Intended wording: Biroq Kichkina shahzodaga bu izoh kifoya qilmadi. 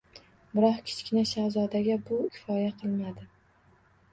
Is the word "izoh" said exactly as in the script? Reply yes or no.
no